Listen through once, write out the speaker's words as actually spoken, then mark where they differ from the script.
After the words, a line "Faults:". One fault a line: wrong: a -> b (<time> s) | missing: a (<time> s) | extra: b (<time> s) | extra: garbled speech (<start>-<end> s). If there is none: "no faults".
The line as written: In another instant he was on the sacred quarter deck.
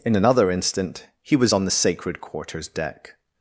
In another instant he was on the sacred quarters deck.
Faults:
wrong: quarter -> quarters (2.2 s)